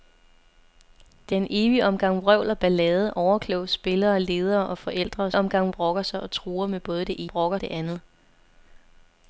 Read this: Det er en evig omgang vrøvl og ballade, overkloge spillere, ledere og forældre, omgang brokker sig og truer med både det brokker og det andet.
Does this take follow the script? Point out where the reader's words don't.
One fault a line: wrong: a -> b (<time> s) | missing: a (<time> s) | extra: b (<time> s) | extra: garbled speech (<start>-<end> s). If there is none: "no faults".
no faults